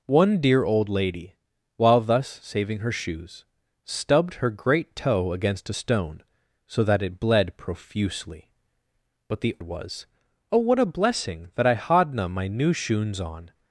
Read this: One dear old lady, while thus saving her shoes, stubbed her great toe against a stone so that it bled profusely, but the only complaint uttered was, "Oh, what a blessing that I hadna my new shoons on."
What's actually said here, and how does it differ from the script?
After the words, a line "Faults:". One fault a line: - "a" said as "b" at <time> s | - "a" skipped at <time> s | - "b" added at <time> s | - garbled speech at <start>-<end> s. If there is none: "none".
One dear old lady, while thus saving her shoes, stubbed her great toe against a stone so that it bled profusely, but the was, "Oh, what a blessing that I hadna my new shoons on."
Faults:
- "only complaint uttered" skipped at 9.6 s